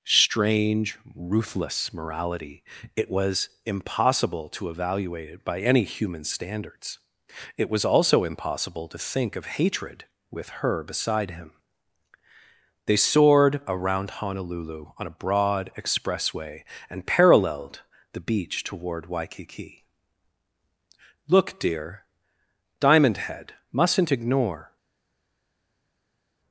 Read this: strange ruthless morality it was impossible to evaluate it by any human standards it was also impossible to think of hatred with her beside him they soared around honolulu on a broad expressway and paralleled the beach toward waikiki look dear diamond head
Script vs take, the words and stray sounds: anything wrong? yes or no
yes